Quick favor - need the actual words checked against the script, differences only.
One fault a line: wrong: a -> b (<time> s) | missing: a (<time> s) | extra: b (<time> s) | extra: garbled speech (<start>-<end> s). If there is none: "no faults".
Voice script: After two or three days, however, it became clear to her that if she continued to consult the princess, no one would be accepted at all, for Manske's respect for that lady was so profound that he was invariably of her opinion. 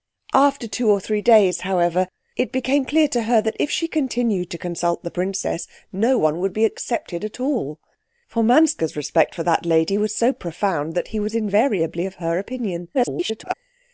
extra: garbled speech (12.9-13.5 s)